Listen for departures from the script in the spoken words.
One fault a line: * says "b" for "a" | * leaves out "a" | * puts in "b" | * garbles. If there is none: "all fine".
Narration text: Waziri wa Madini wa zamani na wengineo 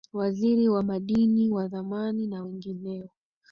all fine